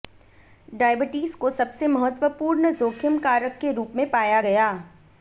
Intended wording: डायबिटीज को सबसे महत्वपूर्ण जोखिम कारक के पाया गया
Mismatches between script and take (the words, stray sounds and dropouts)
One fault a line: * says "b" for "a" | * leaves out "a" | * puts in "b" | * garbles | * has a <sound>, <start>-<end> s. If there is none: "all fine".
* puts in "रूप में"